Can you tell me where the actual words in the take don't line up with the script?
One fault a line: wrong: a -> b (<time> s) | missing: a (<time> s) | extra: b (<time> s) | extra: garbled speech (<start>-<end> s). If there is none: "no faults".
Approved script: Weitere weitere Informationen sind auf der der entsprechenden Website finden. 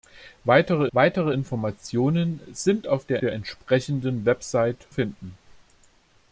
no faults